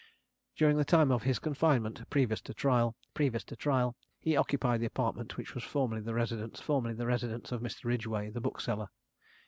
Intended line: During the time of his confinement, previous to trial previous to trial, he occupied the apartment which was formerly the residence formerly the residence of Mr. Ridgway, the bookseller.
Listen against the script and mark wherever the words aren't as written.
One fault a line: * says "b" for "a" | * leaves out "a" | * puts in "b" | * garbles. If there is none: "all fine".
all fine